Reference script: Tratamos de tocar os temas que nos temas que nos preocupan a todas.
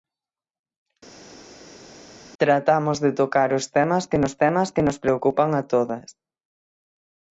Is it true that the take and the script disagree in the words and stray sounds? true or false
false